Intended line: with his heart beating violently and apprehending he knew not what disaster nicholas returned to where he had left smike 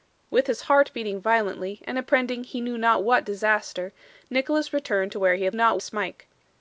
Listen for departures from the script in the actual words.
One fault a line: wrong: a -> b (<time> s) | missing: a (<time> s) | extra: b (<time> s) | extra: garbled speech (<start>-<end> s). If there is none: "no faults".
wrong: left -> not (5.5 s)